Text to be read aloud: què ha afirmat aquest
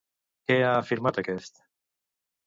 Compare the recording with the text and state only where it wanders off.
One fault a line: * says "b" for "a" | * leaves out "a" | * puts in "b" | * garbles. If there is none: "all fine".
all fine